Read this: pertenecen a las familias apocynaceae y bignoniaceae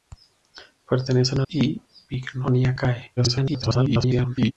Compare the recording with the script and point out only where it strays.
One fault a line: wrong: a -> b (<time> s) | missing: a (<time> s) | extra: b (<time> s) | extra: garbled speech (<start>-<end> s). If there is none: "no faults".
missing: las familias apocynaceae (1.4 s)
extra: garbled speech (3.2-4.5 s)